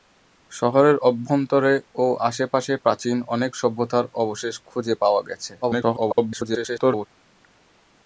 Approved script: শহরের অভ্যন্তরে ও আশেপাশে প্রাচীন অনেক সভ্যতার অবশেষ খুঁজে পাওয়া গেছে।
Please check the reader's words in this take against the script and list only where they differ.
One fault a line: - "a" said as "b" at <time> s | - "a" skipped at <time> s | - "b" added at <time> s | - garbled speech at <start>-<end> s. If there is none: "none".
- garbled speech at 5.6-7.1 s